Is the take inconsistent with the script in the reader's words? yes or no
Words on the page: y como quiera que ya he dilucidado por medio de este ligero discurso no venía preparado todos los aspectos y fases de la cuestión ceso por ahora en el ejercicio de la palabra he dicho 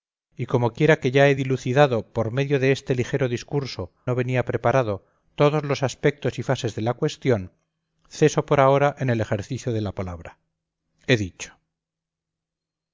no